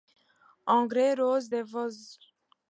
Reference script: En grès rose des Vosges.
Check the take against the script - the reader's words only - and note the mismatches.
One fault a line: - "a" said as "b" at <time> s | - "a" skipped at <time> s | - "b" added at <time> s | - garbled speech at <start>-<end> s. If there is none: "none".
none